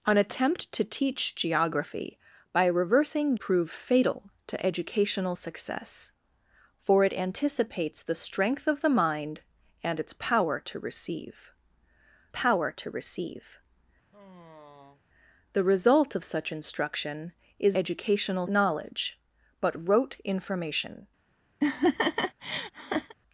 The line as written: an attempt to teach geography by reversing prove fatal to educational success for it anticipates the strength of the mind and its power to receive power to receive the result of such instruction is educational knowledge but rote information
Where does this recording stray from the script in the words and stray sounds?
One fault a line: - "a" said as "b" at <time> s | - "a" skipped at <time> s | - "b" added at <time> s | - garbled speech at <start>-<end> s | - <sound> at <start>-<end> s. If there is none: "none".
- sigh at 14.1-15.0 s
- laugh at 21.6-23.1 s